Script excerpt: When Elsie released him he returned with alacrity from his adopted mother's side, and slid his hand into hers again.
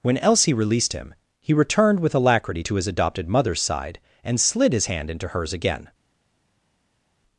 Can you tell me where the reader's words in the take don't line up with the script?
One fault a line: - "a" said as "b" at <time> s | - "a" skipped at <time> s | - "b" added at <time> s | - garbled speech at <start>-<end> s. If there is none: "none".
- "from" said as "to" at 2.6 s